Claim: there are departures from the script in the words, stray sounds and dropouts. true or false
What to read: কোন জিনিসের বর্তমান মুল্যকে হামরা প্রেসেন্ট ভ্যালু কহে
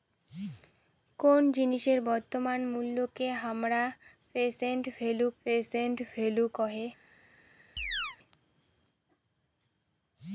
true